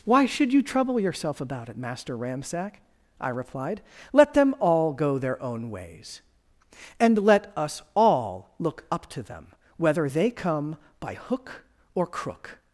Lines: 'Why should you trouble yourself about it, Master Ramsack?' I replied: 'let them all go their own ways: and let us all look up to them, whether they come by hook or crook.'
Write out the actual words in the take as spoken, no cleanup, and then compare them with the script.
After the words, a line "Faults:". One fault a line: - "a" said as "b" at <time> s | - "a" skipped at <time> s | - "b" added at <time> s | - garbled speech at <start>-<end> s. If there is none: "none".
'Why should you trouble yourself about it, Master Ramsack?' I replied: 'let them all go their own ways: and let us all look up to them, whether they come by hook or crook.'
Faults:
none